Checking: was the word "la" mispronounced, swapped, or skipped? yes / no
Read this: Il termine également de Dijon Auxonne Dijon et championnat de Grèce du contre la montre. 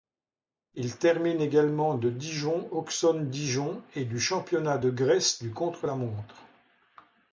no